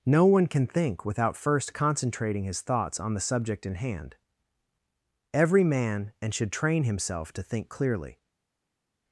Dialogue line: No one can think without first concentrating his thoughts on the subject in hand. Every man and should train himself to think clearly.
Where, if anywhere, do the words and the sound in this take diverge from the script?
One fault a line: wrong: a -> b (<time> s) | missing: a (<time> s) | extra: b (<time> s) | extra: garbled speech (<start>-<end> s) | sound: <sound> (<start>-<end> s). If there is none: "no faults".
no faults